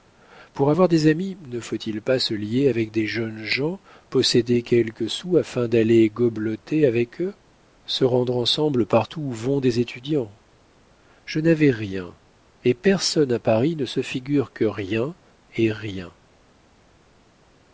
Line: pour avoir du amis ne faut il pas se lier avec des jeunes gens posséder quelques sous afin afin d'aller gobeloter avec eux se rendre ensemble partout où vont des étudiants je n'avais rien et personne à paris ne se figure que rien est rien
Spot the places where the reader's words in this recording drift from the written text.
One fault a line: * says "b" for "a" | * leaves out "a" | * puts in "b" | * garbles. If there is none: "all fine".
* says "des" for "du"
* leaves out "afin"